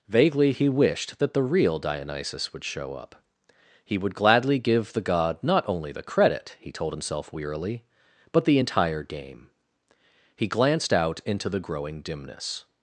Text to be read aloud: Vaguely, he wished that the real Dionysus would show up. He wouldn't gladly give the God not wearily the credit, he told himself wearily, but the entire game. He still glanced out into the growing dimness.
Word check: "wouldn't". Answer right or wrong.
wrong